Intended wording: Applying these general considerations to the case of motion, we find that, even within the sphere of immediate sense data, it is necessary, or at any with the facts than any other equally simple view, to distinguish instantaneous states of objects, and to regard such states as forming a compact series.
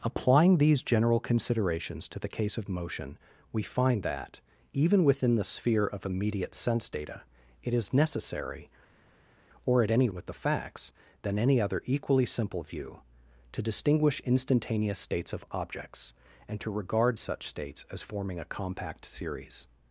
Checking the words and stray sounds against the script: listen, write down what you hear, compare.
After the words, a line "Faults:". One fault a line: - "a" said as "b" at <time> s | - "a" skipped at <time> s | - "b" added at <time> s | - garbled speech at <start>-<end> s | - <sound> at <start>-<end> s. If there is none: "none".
Applying these general considerations to the case of motion, we find that, even within the sphere of immediate sense data, it is necessary, or at any with the facts than any other equally simple view, to distinguish instantaneous states of objects, and to regard such states as forming a compact series.
Faults:
none